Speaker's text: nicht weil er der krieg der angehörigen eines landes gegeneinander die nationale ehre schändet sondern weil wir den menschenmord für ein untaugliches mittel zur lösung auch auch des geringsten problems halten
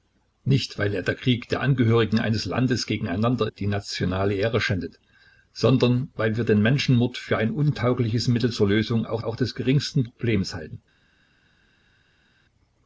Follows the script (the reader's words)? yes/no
yes